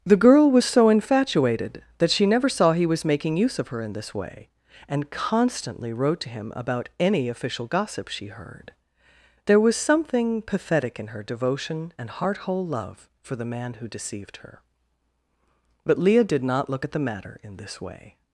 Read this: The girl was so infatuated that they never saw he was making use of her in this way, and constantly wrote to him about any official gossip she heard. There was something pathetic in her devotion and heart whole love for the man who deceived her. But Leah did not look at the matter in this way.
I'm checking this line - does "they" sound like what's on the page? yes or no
no